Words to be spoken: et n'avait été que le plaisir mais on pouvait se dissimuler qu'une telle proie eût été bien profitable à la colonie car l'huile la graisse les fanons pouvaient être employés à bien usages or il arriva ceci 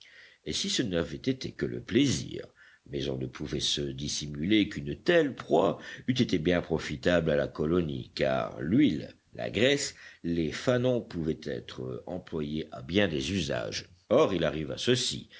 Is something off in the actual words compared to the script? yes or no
yes